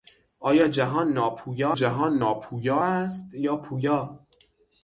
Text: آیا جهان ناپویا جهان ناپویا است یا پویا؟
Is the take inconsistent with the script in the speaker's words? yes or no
no